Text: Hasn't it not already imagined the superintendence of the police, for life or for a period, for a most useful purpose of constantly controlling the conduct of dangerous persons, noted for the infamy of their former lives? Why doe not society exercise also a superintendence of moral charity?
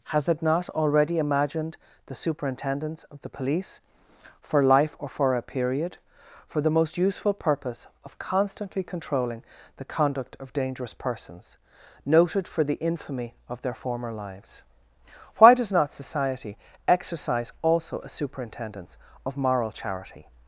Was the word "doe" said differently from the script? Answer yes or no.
yes